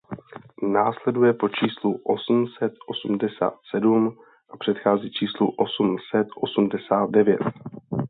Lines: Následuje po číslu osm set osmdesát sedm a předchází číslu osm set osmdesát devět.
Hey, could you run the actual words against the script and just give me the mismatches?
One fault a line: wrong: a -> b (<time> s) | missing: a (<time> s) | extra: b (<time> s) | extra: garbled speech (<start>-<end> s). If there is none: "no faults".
no faults